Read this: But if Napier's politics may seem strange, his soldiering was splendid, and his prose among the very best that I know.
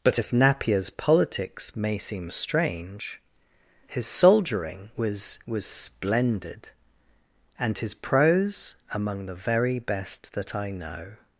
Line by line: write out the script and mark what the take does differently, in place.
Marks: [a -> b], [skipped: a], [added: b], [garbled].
But if Napier's politics may seem strange, his soldiering was [added: was] splendid, and his prose among the very best that I know.